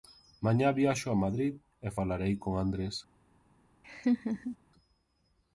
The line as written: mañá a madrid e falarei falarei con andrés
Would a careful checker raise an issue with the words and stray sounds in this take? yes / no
yes